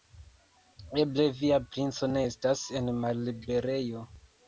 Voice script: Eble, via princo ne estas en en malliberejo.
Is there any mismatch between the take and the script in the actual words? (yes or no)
yes